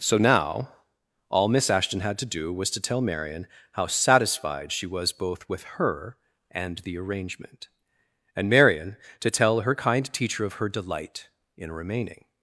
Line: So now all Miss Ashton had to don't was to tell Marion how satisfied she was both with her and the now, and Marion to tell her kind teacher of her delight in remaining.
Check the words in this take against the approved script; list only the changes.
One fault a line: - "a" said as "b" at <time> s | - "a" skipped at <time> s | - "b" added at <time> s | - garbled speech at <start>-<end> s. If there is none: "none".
- "don't" said as "do" at 2.2 s
- "now" said as "arrangement" at 7.0 s